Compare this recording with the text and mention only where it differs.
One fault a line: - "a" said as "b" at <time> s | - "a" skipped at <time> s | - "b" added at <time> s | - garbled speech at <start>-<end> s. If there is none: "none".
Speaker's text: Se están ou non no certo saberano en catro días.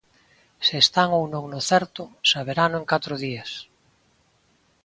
none